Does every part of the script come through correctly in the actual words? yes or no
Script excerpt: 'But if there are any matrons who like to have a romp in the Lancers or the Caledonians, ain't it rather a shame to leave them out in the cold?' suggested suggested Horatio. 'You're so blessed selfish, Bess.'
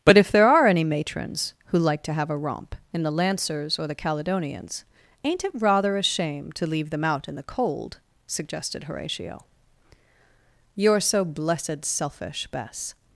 no